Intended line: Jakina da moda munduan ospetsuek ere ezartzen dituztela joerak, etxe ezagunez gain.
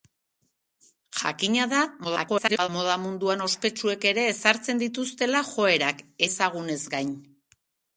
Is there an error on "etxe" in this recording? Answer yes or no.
yes